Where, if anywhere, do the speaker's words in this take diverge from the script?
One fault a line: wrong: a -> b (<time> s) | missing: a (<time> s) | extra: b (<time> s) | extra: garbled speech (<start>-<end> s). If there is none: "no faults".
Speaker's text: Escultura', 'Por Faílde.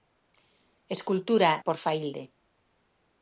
no faults